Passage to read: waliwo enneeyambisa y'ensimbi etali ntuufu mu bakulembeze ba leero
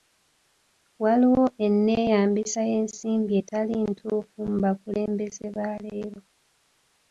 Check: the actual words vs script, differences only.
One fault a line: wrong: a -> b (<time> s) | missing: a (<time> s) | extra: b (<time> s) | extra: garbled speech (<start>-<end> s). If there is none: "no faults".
no faults